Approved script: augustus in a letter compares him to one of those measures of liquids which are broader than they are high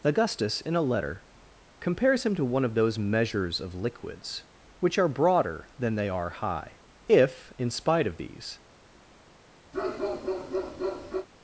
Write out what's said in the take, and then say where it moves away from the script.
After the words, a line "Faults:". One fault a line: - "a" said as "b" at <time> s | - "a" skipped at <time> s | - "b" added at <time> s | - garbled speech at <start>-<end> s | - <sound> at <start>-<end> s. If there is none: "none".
augustus in a letter compares him to one of those measures of liquids which are broader than they are high if in spite of these
Faults:
- "if in spite of these" added at 7.1 s
- bark at 9.7-11.3 s